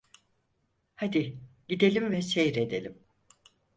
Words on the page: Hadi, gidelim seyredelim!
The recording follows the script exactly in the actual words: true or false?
false